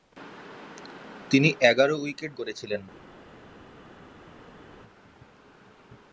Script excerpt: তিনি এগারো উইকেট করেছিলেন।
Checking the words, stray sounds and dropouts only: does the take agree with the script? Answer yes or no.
yes